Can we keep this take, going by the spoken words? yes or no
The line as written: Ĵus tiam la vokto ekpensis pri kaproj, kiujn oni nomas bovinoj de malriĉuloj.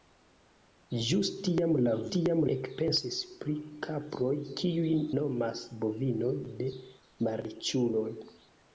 no